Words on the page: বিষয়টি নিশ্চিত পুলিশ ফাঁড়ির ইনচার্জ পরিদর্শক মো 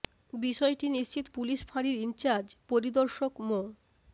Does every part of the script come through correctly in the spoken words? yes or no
yes